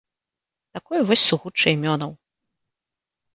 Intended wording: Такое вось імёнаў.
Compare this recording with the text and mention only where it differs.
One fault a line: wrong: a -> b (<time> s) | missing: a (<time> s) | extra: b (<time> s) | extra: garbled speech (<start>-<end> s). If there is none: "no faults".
extra: сугучча (1.3 s)